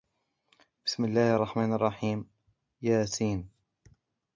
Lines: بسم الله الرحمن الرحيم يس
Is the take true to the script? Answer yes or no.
yes